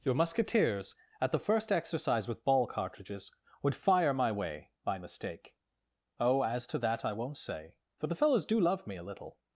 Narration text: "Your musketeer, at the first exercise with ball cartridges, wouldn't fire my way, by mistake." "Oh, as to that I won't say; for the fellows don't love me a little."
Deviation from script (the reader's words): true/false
true